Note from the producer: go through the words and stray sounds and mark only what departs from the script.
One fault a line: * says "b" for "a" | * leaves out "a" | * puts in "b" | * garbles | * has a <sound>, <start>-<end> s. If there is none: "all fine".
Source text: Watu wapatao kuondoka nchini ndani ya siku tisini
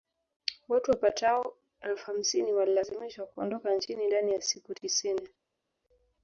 * puts in "elfu hamsini walilazimishwa"